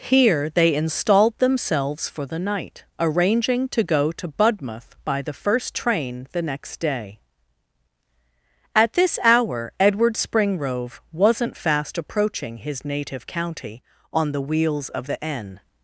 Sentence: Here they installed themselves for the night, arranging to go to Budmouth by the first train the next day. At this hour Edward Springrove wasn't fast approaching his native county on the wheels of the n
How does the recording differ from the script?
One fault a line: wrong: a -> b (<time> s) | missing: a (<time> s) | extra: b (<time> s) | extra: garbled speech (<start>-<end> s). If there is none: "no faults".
no faults